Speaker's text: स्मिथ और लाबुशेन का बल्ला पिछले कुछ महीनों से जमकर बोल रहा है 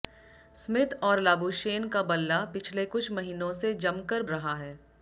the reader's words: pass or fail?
fail